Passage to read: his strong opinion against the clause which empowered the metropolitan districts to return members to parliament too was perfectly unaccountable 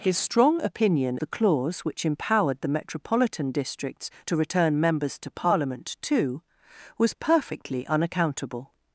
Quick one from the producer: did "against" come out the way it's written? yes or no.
no